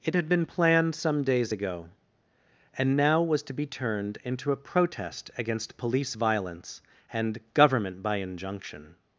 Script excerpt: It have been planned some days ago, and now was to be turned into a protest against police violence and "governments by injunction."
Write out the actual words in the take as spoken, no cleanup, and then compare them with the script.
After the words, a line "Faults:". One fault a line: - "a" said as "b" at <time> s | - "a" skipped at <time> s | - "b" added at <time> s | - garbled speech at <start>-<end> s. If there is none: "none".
It had been planned some days ago, and now was to be turned into a protest against police violence and "government by injunction."
Faults:
- "have" said as "had" at 0.1 s
- "governments" said as "government" at 7.5 s